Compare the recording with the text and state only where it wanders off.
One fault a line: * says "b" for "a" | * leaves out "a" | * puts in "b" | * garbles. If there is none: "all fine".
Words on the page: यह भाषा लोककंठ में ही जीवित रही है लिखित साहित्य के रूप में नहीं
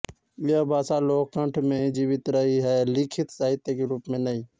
all fine